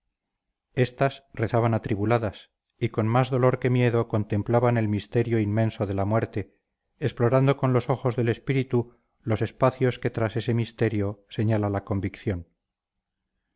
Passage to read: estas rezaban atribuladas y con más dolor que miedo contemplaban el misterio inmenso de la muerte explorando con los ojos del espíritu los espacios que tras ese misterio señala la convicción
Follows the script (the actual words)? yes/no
yes